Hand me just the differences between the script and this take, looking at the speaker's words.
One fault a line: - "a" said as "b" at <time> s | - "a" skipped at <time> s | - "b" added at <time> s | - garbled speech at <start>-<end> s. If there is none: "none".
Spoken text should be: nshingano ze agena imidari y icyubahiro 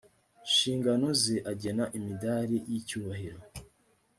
none